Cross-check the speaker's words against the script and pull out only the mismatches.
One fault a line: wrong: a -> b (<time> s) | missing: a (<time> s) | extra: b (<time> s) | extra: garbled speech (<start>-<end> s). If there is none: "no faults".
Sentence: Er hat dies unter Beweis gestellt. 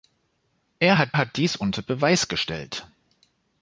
extra: hat (1.2 s)